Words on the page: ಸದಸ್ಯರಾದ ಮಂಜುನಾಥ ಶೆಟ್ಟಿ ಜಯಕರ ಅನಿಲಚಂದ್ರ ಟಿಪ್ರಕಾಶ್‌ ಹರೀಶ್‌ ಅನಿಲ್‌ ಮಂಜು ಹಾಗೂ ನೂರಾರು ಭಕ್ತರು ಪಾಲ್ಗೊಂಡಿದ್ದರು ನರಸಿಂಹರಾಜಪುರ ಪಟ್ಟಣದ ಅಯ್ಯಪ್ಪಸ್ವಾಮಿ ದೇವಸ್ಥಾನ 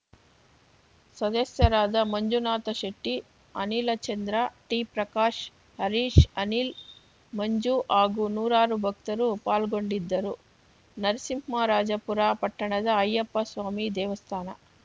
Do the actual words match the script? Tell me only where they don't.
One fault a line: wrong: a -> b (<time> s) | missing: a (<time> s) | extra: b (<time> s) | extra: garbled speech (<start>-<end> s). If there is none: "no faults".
missing: ಜಯಕರ (3.1 s)